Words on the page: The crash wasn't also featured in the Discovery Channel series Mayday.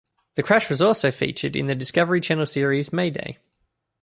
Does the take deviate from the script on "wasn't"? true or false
true